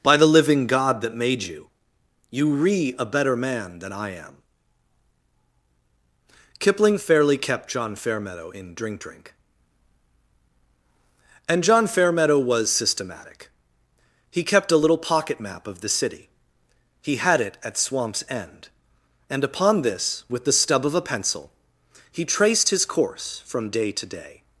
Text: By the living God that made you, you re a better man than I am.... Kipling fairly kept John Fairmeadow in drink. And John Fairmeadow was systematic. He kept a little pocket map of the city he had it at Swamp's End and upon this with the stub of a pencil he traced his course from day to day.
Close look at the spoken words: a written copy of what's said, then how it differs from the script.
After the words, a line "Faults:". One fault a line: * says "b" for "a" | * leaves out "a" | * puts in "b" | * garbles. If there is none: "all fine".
By the living God that made you, you re a better man than I am.... Kipling fairly kept John Fairmeadow in drink drink. And John Fairmeadow was systematic. He kept a little pocket map of the city he had it at Swamp's End and upon this with the stub of a pencil he traced his course from day to day.
Faults:
* puts in "drink"